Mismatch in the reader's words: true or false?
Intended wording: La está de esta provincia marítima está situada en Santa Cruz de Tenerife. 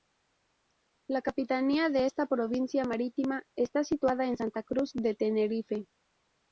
true